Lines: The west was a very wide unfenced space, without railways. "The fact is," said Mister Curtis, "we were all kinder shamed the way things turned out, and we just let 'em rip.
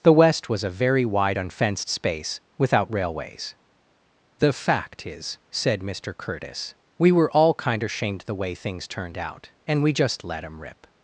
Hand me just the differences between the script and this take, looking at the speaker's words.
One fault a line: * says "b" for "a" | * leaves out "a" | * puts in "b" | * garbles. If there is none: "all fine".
all fine